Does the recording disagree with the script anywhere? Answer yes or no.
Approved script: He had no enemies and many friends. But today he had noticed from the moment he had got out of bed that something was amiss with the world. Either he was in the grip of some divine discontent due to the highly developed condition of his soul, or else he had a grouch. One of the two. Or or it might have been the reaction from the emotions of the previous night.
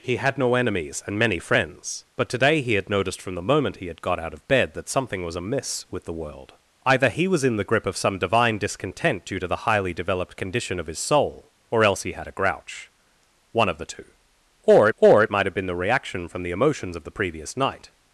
no